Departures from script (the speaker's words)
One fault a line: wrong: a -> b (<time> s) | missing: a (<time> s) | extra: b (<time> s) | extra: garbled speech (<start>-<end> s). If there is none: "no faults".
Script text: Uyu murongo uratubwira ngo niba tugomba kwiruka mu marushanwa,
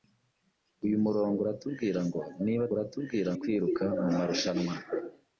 wrong: tugomba -> uratubwira (2.7 s)